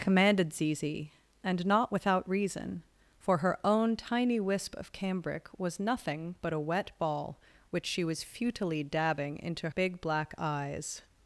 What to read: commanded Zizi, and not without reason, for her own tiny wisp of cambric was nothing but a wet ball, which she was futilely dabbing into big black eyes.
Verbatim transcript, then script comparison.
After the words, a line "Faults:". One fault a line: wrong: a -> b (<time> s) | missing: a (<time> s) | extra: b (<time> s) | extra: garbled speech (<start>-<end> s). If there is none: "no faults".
commanded Zizi, and not without reason, for her own tiny wisp of cambric was nothing but a wet ball, which she was futilely dabbing into big black eyes.
Faults:
no faults